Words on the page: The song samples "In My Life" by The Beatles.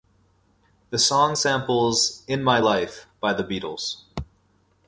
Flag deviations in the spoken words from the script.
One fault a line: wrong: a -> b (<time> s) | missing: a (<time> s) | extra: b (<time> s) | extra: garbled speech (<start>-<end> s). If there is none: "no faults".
no faults